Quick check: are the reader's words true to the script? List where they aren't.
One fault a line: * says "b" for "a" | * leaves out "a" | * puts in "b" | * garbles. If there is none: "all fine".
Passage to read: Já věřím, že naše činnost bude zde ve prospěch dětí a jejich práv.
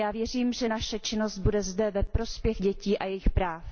all fine